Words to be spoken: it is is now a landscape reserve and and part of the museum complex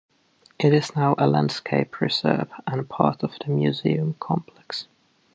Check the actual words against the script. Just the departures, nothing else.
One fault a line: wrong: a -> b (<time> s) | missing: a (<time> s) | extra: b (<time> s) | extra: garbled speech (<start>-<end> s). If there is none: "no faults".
missing: is (1.0 s)
missing: and (2.9 s)